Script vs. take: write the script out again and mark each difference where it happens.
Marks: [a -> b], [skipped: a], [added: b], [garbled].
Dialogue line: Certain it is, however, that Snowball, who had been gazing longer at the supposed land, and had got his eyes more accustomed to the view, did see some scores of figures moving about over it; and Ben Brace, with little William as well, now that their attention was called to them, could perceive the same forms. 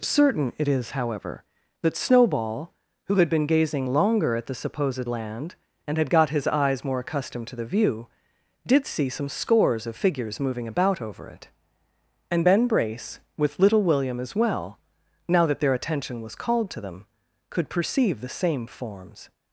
Certain it is, however, that Snowball, who had been gazing longer at the supposed land, and had got his eyes more accustomed to the view, did see some scores of figures moving about over it; and Ben Brace, with little William as well, now that their attention was called to them, could perceive the same forms.